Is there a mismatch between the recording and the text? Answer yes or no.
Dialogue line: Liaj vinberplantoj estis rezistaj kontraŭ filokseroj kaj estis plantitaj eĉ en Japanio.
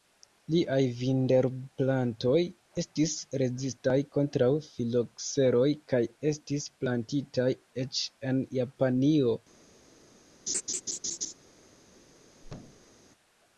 no